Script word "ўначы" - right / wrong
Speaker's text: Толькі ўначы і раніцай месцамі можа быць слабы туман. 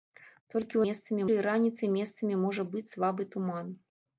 wrong